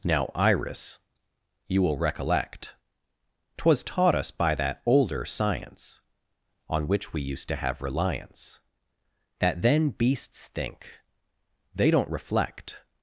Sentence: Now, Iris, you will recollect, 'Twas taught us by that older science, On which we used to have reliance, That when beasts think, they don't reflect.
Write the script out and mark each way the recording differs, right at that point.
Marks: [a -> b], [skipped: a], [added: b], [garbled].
Now, Iris, you will recollect, 'Twas taught us by that older science, On which we used to have reliance, That [when -> then] beasts think, they don't reflect.